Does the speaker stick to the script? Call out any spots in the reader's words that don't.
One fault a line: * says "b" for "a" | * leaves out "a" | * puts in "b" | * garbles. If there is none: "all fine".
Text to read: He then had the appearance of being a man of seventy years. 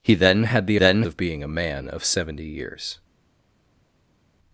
* says "then" for "appearance"